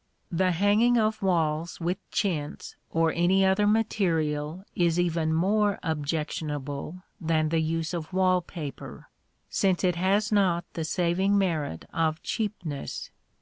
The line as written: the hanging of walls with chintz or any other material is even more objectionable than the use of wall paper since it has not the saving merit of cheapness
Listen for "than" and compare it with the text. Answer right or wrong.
right